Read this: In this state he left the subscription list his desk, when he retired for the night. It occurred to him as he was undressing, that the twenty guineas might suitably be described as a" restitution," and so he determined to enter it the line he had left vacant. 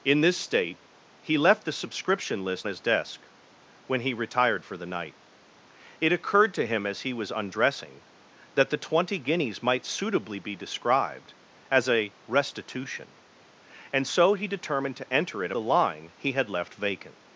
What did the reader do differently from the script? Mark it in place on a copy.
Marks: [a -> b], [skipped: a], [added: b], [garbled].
In this state he left the subscription list his desk, when he retired for the night. It occurred to him as he was undressing, that the twenty guineas might suitably be described as a" restitution," and so he determined to enter it the line he had left vacant.